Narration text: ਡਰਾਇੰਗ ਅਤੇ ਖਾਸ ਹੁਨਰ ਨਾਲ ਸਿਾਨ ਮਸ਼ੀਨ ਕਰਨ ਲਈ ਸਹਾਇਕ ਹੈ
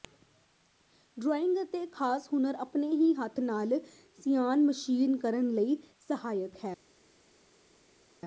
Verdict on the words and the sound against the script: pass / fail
fail